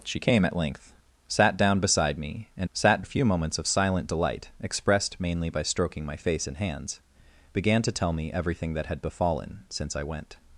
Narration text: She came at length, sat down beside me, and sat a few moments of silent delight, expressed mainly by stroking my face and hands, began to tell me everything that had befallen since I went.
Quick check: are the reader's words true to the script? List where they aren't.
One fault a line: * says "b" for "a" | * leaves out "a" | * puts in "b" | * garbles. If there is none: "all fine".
all fine